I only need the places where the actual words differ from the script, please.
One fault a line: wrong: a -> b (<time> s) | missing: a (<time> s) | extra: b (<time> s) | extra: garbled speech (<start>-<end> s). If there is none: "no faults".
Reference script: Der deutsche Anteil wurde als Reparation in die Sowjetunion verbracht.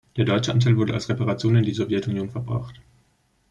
no faults